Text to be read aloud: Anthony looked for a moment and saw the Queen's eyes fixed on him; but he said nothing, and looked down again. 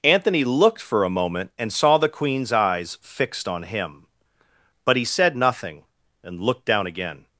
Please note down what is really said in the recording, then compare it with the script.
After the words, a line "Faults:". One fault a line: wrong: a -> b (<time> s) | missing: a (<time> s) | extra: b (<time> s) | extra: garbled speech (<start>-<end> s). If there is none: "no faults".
Anthony looked for a moment and saw the Queen's eyes fixed on him; but he said nothing, and looked down again.
Faults:
no faults